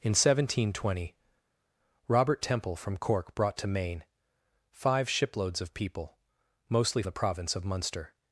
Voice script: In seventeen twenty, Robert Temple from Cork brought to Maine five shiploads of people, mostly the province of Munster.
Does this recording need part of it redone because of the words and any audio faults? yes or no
no